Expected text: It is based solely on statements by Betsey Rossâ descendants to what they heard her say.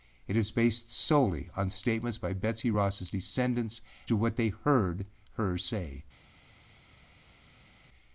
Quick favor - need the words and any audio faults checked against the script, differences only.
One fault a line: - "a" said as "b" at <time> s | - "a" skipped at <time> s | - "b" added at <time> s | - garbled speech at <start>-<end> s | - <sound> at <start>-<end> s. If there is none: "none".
none